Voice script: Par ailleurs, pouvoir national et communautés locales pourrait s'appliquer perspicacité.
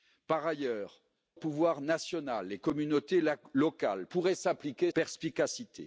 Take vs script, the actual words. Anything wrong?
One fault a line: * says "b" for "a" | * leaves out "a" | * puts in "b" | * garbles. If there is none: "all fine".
all fine